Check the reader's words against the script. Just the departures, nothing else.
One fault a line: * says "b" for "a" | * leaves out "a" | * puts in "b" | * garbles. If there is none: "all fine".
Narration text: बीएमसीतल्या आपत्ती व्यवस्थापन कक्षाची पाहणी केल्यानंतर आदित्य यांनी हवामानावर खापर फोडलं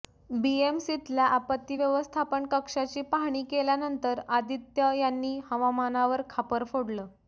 all fine